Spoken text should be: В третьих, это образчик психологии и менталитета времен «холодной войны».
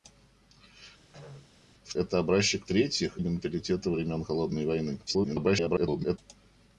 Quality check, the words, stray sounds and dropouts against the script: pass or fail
fail